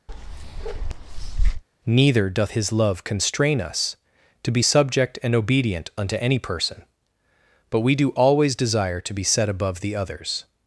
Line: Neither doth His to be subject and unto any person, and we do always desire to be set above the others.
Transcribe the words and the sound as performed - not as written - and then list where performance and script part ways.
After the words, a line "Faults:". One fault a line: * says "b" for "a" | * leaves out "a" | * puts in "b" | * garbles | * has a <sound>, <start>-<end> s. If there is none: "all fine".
Neither doth His love constrain us to be subject and obedient unto any person, but we do always desire to be set above the others.
Faults:
* has a bark, 0.1-1.6 s
* puts in "love constrain us"
* puts in "obedient"
* says "but" for "and"